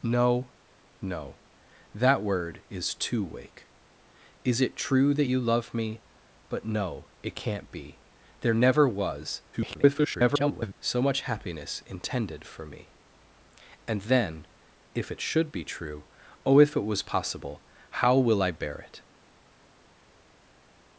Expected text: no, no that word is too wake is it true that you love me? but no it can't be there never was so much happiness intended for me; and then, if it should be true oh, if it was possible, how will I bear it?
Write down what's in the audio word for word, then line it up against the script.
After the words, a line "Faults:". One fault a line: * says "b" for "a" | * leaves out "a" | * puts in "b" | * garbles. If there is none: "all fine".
no, no that word is too wake is it true that you love me? but no it can't be there never was [garbled] so much happiness intended for me; and then, if it should be true oh, if it was possible, how will I bear it?
Faults:
* garbles